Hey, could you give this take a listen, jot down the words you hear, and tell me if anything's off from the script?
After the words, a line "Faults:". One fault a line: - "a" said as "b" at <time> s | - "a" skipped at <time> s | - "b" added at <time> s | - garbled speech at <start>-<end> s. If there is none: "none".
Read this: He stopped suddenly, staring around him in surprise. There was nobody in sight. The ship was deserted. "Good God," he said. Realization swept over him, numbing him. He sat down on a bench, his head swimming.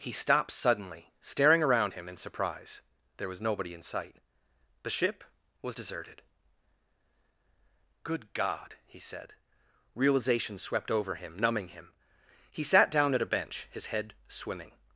He stopped suddenly, staring around him in surprise. There was nobody in sight. The ship was deserted. "Good God," he said. Realization swept over him, numbing him. He sat down at a bench, his head swimming.
Faults:
- "on" said as "at" at 13.1 s